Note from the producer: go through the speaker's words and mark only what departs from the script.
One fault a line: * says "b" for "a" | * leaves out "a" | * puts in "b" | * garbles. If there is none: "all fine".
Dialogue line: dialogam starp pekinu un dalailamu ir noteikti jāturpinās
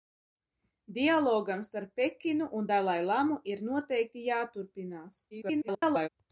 * garbles